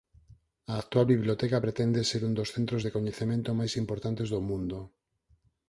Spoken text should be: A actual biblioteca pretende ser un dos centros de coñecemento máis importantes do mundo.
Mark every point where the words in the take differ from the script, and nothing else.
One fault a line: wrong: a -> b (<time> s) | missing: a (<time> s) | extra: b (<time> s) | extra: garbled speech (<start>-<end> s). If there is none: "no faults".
no faults